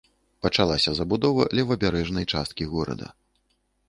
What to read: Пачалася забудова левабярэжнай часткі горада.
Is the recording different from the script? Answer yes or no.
no